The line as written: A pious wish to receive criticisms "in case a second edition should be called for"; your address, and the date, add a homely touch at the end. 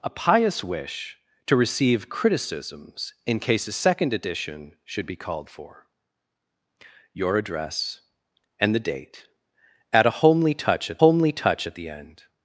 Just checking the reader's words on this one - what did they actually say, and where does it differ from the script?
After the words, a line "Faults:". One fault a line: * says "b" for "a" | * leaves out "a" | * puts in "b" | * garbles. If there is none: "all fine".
A pious wish to receive criticisms "in case a second edition should be called for"; your address, and the date, add a homely touch at homely touch at the end.
Faults:
* puts in "homely touch at"